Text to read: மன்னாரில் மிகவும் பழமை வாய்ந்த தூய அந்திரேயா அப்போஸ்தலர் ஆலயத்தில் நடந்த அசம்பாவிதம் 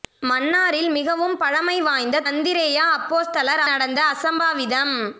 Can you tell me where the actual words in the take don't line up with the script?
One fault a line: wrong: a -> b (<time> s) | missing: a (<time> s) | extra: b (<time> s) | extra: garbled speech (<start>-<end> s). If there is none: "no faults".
missing: தூய (2.2 s)
missing: ஆலயத்தில் (3.6 s)